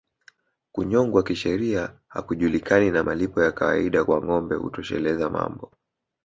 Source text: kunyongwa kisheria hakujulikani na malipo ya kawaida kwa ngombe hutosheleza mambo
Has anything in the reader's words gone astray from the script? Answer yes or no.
no